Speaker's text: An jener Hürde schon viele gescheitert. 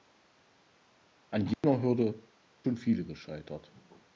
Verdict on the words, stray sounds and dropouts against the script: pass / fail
fail